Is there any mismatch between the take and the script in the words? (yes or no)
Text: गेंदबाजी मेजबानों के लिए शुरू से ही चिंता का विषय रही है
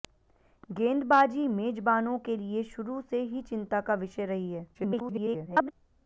yes